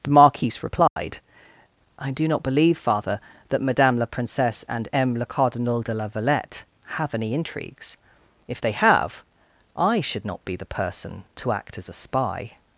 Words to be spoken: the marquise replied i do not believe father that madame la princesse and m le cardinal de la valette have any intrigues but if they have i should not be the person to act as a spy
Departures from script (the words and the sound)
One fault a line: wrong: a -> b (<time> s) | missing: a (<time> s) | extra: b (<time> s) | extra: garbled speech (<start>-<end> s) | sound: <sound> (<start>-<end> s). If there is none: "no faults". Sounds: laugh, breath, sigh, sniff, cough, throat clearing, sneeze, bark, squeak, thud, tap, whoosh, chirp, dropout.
sound: dropout (0.9-1.0 s)
missing: but (8.0 s)